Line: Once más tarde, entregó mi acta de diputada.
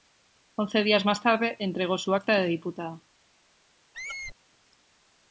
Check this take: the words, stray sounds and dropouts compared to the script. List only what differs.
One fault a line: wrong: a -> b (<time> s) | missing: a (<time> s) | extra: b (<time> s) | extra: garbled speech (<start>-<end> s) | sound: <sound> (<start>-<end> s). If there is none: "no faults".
extra: días (0.8 s)
wrong: mi -> su (2.0 s)
sound: squeak (3.9-4.4 s)